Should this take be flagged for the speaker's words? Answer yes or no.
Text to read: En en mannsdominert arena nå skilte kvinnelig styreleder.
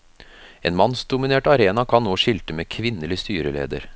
yes